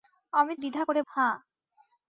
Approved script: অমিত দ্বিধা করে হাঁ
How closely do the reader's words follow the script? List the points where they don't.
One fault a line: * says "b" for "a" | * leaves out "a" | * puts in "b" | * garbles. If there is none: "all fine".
all fine